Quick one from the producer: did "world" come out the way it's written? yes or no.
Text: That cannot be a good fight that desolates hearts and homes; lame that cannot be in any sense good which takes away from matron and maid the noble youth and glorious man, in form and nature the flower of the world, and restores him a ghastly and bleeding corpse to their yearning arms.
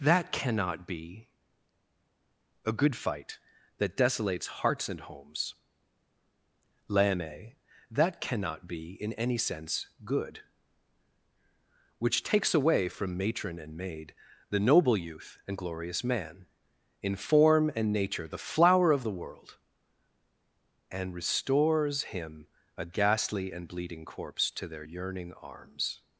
yes